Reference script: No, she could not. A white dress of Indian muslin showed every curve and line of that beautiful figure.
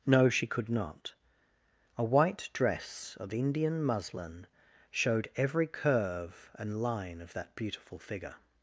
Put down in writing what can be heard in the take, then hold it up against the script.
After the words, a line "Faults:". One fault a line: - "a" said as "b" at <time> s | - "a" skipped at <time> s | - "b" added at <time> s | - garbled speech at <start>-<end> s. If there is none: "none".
No, she could not. A white dress of Indian muslin showed every curve and line of that beautiful figure.
Faults:
none